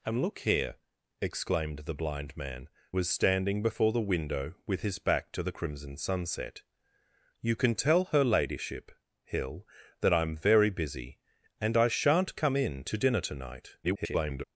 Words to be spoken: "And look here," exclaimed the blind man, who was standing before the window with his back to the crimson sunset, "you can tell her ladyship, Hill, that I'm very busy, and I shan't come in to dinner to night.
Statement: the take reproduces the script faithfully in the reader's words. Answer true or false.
false